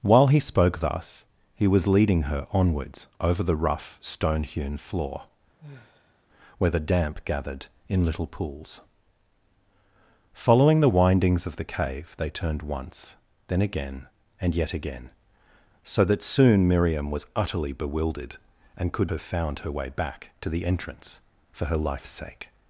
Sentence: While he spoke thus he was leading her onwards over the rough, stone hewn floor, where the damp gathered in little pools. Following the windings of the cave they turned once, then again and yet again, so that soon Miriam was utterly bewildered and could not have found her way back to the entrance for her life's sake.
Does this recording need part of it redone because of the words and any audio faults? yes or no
yes